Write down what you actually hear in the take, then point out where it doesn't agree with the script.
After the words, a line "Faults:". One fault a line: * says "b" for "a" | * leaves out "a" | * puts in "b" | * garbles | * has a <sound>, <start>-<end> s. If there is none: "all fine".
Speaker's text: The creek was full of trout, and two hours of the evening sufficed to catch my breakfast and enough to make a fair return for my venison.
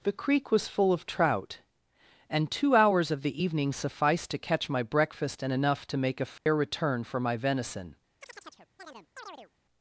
The creek was full of trout, and two hours of the evening sufficed to catch my breakfast and enough to make a fair return for my venison.
Faults:
* has a dropout, 6.4-6.5 s
* has a chirp, 8.2-9.5 s